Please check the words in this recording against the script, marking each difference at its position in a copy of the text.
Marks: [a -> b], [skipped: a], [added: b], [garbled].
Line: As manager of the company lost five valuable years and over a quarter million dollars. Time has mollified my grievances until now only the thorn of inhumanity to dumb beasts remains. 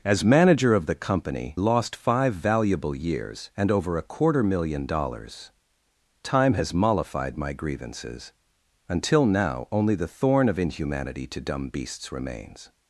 As manager of the company lost five valuable years and over a quarter million dollars. Time has mollified my grievances until now only the thorn of inhumanity to dumb beasts remains.